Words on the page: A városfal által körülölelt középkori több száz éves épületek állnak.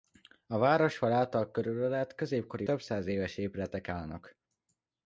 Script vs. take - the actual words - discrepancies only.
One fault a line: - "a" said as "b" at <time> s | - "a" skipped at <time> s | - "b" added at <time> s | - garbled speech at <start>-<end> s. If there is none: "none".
none